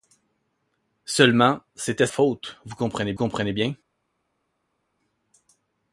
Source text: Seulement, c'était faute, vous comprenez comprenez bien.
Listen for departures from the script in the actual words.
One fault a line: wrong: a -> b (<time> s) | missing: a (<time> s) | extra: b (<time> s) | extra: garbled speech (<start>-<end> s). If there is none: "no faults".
no faults